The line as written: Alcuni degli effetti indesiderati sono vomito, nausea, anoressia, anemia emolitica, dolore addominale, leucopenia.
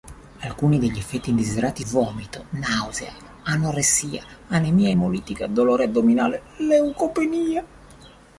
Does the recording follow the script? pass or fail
fail